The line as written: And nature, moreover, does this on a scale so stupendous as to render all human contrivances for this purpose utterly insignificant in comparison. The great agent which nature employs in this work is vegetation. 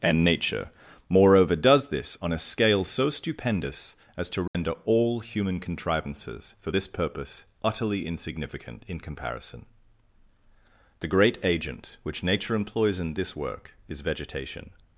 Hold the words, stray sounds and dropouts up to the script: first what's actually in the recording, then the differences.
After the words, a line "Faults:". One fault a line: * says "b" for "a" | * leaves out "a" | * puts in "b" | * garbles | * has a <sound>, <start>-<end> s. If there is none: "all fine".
And nature, moreover, does this on a scale so stupendous as to render all human contrivances for this purpose utterly insignificant in comparison. The great agent which nature employs in this work is vegetation.
Faults:
* has a dropout, 4.5-4.5 s